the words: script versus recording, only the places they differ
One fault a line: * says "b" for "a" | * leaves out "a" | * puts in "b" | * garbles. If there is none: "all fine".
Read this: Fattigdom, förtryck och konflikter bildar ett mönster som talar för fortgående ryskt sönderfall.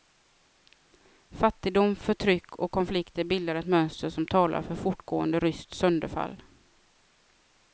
all fine